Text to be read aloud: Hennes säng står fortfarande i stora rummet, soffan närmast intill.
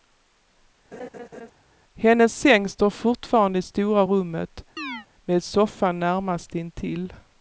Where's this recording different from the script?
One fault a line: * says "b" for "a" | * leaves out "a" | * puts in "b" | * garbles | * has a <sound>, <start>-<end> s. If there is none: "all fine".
* has a laugh, 0.9-1.5 s
* has a chirp, 4.8-5.1 s
* puts in "med"